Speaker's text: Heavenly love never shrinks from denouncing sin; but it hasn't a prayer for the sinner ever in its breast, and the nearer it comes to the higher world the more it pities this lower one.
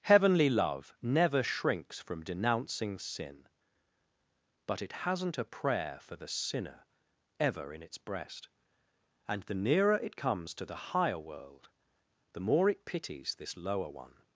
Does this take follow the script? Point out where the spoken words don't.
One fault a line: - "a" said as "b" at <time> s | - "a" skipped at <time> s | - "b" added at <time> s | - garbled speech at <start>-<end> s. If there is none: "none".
none